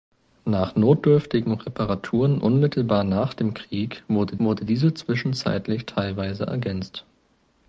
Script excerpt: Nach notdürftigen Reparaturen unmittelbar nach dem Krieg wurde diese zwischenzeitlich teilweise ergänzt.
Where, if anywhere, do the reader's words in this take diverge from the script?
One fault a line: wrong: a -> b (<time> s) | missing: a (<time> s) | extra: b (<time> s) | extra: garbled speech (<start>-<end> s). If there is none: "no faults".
extra: wurde (4.4 s)